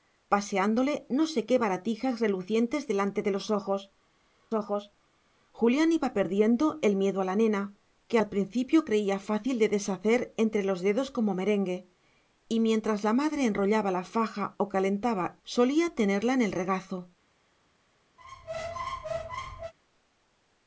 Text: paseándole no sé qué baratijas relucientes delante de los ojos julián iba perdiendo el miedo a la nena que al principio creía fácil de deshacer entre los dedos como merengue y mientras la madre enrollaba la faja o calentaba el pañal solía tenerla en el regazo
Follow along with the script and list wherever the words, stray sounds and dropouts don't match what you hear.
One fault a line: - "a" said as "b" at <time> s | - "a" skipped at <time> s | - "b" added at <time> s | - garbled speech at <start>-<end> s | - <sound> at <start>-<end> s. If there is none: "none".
- "ojos" added at 4.5 s
- "el pañal" skipped at 15.4 s
- squeak at 18.2-19.7 s